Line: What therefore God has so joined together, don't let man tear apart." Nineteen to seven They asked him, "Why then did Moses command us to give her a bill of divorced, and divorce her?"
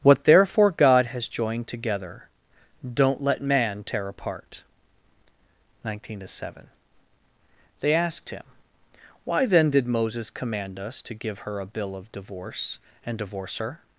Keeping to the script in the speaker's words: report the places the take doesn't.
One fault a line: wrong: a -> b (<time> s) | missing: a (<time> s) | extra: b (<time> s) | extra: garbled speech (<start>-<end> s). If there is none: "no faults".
missing: so (1.3 s)
wrong: divorced -> divorce (12.1 s)